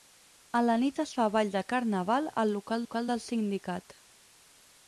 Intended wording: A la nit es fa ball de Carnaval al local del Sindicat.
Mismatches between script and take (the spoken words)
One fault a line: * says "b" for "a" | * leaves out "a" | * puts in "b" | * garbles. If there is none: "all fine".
* puts in "local"